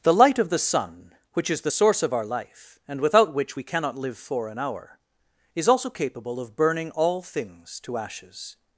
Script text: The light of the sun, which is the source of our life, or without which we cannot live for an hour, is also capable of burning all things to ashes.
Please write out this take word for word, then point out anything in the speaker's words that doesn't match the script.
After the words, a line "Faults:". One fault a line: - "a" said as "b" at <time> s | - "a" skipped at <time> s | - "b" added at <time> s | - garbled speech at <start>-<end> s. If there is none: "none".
The light of the sun, which is the source of our life, and without which we cannot live for an hour, is also capable of burning all things to ashes.
Faults:
- "or" said as "and" at 2.9 s